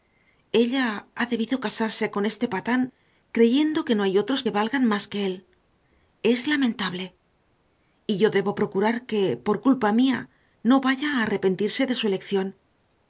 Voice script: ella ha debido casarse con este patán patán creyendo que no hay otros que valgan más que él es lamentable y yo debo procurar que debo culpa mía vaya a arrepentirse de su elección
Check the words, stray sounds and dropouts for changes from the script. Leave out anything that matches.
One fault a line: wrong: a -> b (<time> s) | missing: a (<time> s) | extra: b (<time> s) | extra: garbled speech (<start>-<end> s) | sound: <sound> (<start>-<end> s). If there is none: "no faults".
missing: patán (2.8 s)
wrong: debo -> por (9.5 s)
extra: no (10.7 s)